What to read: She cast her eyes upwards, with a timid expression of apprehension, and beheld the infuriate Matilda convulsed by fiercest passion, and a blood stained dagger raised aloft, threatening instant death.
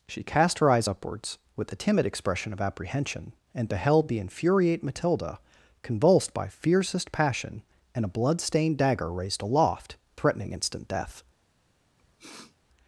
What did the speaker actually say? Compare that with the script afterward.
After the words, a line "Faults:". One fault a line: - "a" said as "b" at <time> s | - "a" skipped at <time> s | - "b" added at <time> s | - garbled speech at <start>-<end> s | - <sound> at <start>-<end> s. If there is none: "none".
She cast her eyes upwards, with a timid expression of apprehension, and beheld the infuriate Matilda convulsed by fiercest passion, and a blood stained dagger raised aloft, threatening instant death.
Faults:
- sniff at 12.0-12.6 s